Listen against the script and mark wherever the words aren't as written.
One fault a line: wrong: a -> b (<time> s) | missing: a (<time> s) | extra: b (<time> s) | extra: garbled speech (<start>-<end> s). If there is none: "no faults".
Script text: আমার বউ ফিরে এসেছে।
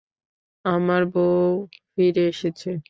no faults